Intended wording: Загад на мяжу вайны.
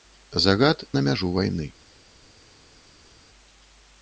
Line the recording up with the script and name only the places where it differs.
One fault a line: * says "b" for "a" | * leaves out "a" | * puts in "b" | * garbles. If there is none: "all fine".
all fine